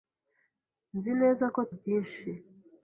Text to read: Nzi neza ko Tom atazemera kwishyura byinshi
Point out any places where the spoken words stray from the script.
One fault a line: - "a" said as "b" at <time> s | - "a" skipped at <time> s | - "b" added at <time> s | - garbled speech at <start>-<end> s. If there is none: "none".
- "Tom atazemera kwishyura" skipped at 1.6 s